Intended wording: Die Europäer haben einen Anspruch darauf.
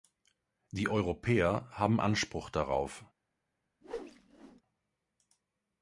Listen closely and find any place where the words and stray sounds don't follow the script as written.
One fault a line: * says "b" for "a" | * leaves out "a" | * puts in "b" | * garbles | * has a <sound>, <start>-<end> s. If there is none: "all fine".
* leaves out "einen"
* has a whoosh, 3.8-4.6 s